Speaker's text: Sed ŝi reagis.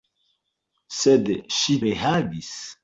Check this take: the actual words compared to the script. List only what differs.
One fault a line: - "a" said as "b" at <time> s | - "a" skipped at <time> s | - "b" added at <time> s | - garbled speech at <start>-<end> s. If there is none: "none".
none